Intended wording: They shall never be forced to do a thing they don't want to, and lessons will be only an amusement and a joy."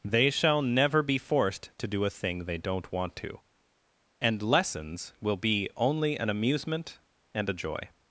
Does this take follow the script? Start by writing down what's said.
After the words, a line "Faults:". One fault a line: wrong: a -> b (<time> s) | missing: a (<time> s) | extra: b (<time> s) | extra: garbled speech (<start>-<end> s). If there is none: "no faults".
They shall never be forced to do a thing they don't want to, and lessons will be only an amusement and a joy."
Faults:
no faults